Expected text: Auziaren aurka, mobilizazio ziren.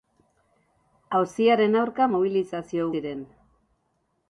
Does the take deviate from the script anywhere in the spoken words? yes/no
no